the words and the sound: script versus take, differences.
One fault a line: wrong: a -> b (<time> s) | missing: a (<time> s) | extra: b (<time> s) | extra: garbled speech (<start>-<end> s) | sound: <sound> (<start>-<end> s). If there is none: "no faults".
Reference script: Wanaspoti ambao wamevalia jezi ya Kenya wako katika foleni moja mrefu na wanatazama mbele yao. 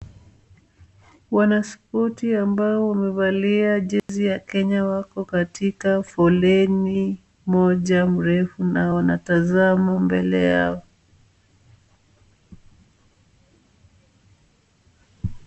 sound: dropout (4.0-4.1 s)